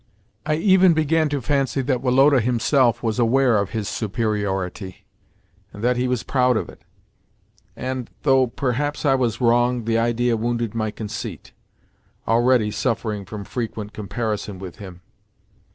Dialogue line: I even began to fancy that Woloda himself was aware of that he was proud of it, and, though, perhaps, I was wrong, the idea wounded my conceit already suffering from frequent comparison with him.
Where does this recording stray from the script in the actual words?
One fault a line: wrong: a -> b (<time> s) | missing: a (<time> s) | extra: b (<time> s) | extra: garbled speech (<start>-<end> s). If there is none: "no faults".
extra: his superiority and (3.7 s)